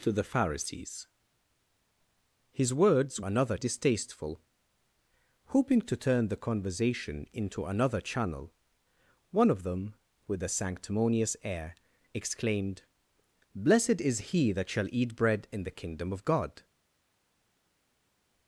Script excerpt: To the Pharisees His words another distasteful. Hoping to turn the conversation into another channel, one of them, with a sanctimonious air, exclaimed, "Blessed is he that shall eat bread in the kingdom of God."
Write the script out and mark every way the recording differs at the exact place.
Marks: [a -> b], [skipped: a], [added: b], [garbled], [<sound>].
To the Pharisees His words another distasteful. Hoping to turn the conversation into another channel, one of them, with a sanctimonious air, exclaimed, "Blessed is he that shall eat bread in the kingdom of God."